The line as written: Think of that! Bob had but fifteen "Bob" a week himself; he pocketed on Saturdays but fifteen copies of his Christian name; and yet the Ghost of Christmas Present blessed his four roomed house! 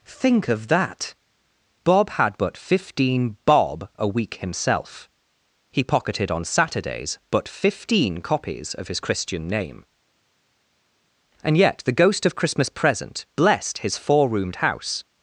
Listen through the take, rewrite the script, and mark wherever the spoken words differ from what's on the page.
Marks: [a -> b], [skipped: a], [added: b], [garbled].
Think of that! Bob had but fifteen "Bob" a week himself; he pocketed on Saturdays but fifteen copies of his Christian name; and yet the Ghost of Christmas Present blessed his four roomed house!